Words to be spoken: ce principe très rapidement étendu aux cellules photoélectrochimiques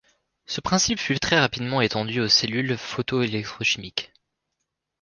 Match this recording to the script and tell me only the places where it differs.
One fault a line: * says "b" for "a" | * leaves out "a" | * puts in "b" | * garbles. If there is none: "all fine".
* puts in "fut"